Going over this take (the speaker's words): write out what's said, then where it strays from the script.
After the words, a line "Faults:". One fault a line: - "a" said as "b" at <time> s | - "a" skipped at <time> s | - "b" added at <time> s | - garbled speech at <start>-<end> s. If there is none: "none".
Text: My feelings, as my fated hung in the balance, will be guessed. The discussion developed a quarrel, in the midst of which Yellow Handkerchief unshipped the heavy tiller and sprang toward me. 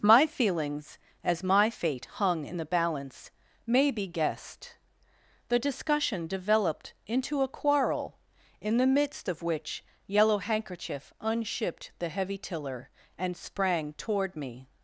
My feelings, as my fate hung in the balance, may be guessed. The discussion developed into a quarrel, in the midst of which Yellow Handkerchief unshipped the heavy tiller and sprang toward me.
Faults:
- "fated" said as "fate" at 1.7 s
- "will" said as "may" at 3.7 s
- "into" added at 7.1 s